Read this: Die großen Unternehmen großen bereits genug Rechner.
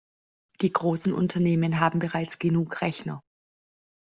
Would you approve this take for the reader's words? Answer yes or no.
no